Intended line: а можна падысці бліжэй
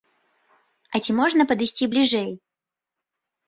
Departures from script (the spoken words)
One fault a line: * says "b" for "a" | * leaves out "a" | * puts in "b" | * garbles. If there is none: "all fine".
* puts in "ці"